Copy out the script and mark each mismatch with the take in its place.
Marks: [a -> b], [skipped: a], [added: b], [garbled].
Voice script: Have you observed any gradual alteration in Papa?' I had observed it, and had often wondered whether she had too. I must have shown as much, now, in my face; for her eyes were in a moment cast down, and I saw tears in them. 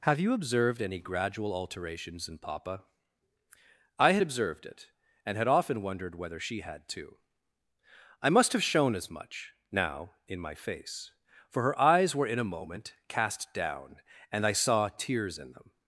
Have you observed any gradual [alteration -> alterations] in Papa?' I had observed it, and had often wondered whether she had too. I must have shown as much, now, in my face; for her eyes were in a moment cast down, and I saw tears in them.